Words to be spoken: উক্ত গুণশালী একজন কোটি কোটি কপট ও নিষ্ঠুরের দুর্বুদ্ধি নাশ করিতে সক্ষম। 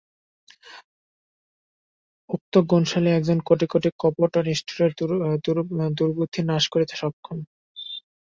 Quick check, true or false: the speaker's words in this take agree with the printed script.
true